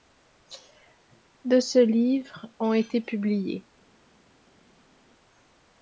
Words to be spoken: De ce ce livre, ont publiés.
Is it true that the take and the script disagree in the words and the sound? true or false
true